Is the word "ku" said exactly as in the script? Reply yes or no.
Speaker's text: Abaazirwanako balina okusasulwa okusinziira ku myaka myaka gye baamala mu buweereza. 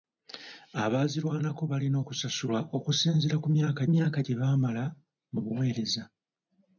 yes